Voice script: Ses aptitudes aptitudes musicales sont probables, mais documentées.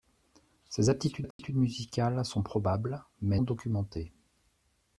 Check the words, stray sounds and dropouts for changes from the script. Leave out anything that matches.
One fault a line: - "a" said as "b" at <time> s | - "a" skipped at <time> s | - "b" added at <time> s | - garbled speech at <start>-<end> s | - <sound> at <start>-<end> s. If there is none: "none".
- dropout at 1.3-1.4 s